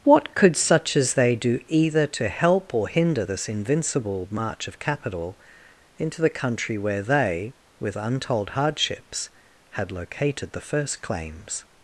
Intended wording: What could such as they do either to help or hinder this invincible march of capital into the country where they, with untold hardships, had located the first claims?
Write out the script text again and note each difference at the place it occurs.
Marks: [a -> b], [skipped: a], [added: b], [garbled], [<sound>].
What could such as they do either to help or hinder this invincible march of capital into the country where they, with untold hardships, had located the first claims?